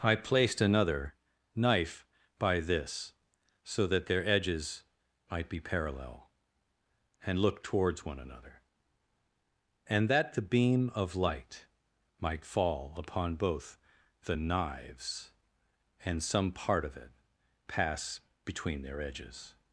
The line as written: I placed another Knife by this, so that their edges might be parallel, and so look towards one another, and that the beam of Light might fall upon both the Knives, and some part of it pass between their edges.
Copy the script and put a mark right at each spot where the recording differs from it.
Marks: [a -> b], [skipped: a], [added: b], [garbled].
I placed another Knife by this, so that their edges might be parallel, and [skipped: so] look towards one another, and that the beam of Light might fall upon both the Knives, and some part of it pass between their edges.